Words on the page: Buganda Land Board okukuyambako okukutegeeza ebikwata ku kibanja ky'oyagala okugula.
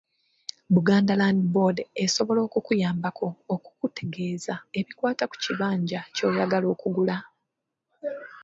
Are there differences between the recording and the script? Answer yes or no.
yes